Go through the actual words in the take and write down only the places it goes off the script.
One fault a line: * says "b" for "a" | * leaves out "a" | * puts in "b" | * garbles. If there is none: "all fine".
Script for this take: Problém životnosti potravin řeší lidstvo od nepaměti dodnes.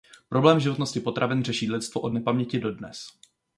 all fine